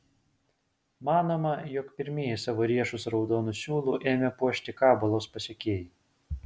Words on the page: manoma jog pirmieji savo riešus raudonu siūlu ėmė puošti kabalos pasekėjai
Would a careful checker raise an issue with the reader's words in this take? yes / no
no